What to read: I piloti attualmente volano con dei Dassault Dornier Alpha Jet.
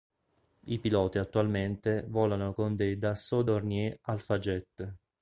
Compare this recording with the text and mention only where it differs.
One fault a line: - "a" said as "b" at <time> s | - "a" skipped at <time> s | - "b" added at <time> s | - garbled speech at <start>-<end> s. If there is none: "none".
none